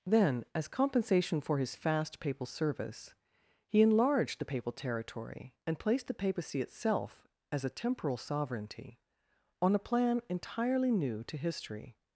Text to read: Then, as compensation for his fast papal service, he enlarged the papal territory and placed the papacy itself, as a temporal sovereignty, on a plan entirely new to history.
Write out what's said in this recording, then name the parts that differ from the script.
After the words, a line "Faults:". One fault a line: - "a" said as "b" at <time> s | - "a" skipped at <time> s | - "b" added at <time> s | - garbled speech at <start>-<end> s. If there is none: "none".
Then, as compensation for his fast papal service, he enlarged the papal territory and placed the papacy itself, as a temporal sovereignty, on a plan entirely new to history.
Faults:
none